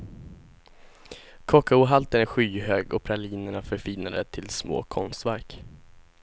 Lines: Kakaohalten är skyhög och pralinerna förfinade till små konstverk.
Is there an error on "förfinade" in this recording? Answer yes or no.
no